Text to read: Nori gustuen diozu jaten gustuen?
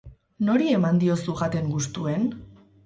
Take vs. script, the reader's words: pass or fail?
fail